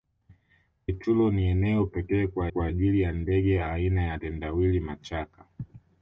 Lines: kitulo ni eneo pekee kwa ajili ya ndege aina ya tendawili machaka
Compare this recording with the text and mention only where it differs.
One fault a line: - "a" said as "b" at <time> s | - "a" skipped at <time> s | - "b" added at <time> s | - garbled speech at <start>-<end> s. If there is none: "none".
- "kwa" added at 2.5 s